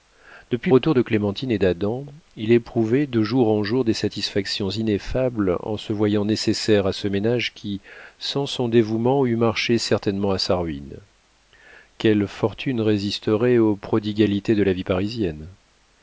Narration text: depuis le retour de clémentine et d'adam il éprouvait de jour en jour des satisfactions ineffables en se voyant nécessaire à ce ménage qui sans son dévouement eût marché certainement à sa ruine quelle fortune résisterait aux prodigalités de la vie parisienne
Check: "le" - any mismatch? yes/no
yes